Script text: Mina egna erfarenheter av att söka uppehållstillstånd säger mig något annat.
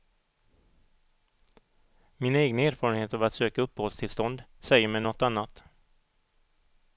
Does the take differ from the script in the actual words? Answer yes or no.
no